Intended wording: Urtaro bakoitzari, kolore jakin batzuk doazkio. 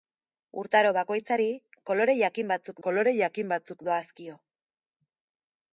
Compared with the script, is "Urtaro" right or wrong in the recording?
right